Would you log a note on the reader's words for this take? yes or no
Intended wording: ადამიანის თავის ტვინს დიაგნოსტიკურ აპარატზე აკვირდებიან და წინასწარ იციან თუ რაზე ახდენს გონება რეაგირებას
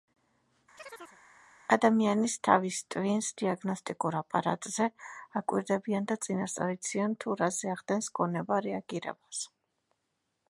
no